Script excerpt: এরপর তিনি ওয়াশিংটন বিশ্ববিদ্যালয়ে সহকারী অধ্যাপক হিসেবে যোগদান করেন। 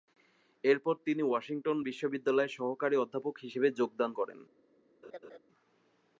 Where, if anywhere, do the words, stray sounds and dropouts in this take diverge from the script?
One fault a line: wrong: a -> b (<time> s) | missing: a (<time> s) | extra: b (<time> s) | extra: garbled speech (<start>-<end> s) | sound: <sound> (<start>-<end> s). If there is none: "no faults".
sound: laugh (5.0-5.4 s)